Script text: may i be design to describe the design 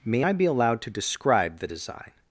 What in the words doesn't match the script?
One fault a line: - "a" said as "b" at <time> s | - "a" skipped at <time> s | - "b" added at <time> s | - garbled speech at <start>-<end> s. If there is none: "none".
- "design" said as "allowed" at 0.4 s